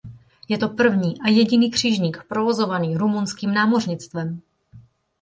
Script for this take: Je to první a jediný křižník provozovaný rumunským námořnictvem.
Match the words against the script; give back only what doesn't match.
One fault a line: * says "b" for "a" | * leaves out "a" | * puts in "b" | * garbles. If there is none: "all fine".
all fine